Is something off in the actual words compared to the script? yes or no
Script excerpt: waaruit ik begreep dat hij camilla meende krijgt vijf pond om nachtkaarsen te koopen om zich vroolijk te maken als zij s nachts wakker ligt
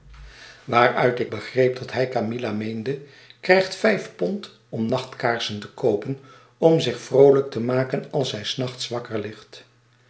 no